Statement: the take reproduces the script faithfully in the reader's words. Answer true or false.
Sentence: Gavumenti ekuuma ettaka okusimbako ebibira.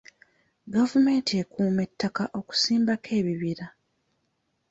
true